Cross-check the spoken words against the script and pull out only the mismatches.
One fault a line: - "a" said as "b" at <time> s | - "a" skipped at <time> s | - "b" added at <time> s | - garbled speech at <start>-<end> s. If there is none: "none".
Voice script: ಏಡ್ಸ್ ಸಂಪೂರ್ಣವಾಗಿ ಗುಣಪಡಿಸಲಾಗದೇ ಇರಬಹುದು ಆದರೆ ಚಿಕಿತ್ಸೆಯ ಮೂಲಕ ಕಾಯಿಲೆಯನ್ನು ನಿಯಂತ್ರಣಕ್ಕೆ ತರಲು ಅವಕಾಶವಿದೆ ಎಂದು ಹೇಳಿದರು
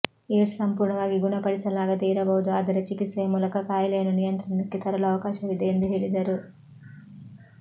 none